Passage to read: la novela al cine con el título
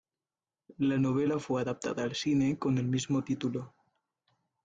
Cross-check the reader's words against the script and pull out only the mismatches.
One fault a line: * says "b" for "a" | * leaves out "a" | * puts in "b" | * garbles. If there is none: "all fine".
* puts in "fue adaptada"
* puts in "mismo"